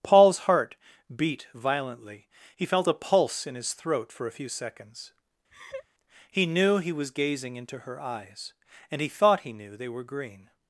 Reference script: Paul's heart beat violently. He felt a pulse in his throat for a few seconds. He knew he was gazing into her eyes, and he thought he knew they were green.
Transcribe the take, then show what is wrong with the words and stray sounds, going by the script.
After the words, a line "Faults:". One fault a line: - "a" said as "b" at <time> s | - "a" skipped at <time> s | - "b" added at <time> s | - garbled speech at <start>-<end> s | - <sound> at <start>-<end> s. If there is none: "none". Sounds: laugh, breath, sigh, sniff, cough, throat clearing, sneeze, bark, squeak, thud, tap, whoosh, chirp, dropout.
Paul's heart beat violently. He felt a pulse in his throat for a few seconds. He knew he was gazing into her eyes, and he thought he knew they were green.
Faults:
- laugh at 5.5-5.9 s